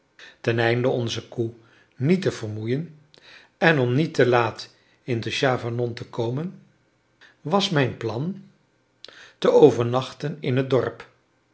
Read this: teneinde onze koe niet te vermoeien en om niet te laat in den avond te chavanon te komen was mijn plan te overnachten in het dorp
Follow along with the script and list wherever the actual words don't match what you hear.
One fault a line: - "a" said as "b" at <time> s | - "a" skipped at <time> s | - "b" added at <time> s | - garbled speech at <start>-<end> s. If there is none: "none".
- "den avond" skipped at 5.2 s